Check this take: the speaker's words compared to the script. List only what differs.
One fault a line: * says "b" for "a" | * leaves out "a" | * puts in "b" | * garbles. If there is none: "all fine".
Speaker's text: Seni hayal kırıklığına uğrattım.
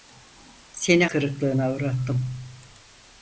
* leaves out "hayal"